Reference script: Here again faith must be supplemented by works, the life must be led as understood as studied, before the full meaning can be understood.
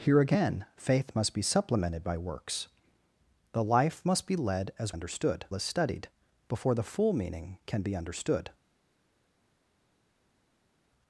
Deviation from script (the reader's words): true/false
false